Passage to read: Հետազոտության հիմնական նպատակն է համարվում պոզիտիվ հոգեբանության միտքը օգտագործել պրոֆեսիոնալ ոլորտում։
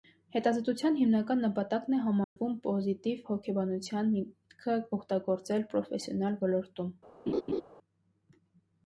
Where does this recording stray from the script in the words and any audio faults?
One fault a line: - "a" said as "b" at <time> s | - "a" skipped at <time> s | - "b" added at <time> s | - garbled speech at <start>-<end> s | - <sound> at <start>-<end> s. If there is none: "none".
- dropout at 2.2-2.4 s
- laugh at 7.3-7.6 s